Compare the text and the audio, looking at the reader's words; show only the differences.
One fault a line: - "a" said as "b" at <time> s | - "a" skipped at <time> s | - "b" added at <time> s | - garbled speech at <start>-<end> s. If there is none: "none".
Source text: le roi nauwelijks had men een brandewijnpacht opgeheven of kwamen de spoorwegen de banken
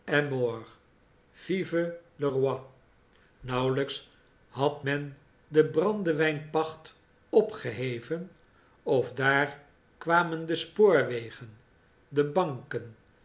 - "een" said as "de" at 5.5 s
- "daar" added at 9.1 s